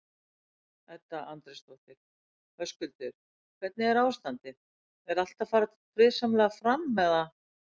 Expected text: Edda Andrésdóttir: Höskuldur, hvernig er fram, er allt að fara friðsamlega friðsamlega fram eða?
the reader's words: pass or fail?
fail